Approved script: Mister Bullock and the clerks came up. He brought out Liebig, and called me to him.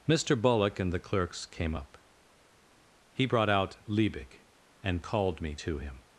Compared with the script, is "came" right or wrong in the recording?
right